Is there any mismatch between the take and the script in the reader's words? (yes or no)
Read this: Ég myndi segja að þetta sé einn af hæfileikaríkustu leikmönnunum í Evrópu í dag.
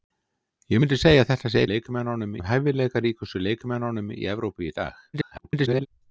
yes